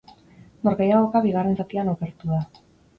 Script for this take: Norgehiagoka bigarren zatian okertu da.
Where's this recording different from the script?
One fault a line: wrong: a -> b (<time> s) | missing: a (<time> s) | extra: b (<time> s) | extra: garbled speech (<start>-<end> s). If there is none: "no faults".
no faults